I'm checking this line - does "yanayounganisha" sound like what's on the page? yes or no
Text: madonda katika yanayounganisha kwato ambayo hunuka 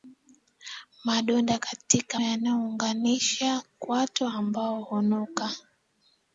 yes